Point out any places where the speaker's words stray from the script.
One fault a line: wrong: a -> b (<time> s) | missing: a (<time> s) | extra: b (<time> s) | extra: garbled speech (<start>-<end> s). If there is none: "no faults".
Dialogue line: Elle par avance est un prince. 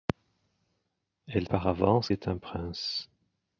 no faults